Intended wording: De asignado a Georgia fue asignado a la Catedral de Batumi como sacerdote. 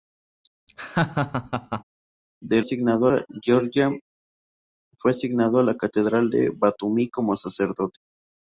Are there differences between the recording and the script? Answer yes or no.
no